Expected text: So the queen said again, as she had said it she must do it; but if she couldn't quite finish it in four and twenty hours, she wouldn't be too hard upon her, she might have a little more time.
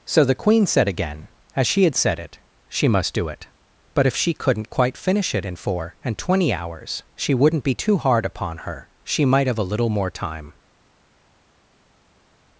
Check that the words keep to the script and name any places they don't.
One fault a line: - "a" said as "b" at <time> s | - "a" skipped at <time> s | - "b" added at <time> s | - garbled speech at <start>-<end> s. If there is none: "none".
none